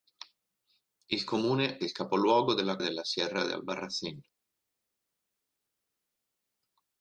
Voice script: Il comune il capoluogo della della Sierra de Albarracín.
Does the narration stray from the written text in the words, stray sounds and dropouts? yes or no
no